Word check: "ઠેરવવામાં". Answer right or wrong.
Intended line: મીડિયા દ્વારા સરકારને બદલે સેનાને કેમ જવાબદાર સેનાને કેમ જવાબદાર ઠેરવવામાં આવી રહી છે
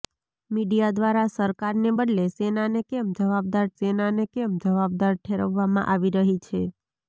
right